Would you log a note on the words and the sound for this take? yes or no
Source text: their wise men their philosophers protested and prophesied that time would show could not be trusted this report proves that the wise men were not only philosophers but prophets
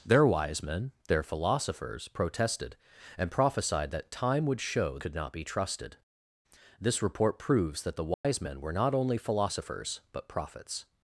yes